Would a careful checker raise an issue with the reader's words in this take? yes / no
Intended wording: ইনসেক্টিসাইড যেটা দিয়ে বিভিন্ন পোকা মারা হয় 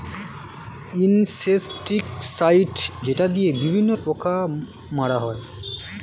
no